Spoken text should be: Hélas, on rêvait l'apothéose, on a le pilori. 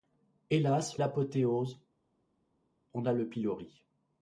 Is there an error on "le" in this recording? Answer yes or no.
no